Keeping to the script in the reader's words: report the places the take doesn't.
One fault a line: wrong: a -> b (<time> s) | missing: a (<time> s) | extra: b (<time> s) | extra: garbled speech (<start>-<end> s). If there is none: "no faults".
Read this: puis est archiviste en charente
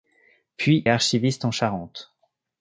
no faults